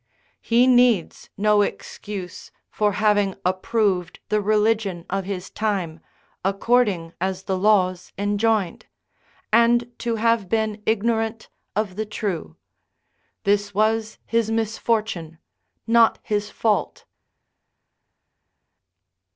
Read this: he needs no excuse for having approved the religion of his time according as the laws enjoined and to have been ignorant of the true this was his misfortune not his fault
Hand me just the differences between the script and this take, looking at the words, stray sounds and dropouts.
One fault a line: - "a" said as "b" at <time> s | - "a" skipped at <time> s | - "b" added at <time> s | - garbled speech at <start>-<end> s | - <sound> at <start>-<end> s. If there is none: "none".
none